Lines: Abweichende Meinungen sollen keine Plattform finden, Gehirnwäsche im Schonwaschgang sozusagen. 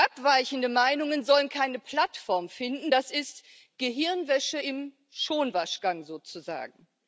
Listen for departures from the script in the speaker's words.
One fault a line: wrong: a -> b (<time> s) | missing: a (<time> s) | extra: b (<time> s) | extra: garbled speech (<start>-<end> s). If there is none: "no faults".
extra: das ist (2.9 s)